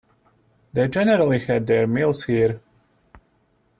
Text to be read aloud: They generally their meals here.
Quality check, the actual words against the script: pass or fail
fail